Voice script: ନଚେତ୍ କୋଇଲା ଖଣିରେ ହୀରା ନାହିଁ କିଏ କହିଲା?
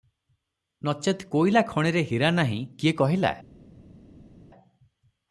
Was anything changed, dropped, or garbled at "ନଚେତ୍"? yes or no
no